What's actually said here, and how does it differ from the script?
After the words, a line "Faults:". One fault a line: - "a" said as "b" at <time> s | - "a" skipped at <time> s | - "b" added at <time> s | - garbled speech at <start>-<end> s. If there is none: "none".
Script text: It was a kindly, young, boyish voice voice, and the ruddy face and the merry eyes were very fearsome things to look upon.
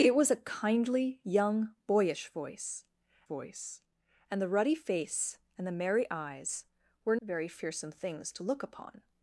It was a kindly, young, boyish voice voice, and the ruddy face and the merry eyes were very fearsome things to look upon.
Faults:
none